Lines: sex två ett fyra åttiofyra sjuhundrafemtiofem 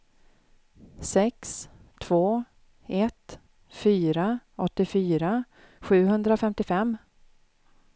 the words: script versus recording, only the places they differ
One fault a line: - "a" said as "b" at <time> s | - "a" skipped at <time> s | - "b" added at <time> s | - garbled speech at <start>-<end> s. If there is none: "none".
none